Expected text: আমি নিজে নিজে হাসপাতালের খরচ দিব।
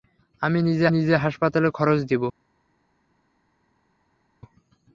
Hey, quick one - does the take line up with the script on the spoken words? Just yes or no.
yes